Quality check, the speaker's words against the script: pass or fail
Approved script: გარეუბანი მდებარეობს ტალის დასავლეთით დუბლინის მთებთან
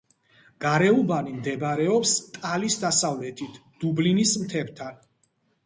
pass